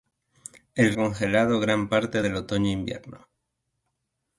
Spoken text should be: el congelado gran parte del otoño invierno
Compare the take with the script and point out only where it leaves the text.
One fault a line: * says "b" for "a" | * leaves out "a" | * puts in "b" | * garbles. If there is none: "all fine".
all fine